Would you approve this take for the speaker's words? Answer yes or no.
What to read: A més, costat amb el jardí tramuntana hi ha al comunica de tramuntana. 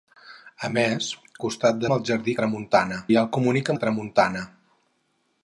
yes